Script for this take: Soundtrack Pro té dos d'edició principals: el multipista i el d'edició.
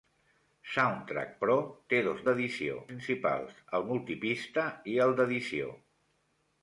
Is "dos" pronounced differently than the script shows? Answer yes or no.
no